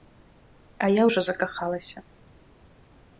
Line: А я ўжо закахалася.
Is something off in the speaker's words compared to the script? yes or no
no